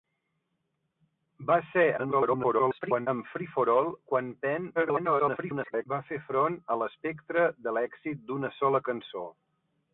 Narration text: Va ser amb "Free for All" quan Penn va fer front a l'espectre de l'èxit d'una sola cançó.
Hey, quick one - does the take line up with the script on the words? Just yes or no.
no